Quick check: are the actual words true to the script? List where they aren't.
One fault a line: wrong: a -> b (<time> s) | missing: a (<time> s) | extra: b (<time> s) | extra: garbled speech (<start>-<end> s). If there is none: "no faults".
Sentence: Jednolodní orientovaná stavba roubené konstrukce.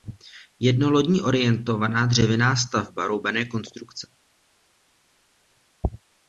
extra: dřevěná (2.0 s)